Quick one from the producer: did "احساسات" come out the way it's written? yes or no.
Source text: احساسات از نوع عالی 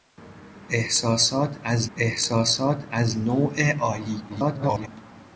yes